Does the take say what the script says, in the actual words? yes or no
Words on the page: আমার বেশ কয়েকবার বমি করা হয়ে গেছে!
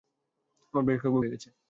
no